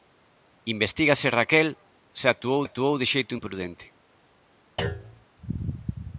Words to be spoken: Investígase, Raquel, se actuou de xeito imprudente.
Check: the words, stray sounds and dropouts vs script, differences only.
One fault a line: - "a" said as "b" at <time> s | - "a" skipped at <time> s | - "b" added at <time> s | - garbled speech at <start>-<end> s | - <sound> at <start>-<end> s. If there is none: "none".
- "actuou" added at 2.6 s
- thud at 4.8-5.3 s